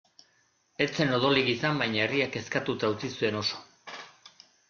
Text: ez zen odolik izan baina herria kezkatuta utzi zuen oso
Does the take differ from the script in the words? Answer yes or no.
no